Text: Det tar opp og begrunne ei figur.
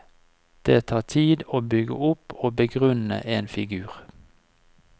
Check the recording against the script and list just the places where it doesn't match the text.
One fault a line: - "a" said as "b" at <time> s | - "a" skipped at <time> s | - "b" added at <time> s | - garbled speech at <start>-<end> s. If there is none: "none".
- "tid å bygge" added at 1.0 s
- "ei" said as "en" at 3.2 s